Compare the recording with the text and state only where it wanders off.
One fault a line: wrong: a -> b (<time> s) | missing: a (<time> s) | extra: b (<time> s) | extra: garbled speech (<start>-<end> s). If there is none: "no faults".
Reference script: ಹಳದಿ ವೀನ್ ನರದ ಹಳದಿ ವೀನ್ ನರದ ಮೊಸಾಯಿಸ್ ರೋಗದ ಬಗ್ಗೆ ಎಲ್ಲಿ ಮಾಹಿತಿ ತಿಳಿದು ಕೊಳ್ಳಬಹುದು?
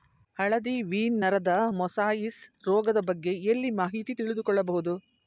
missing: ಹಳದಿ ವೀನ್ ನರದ (1.5 s)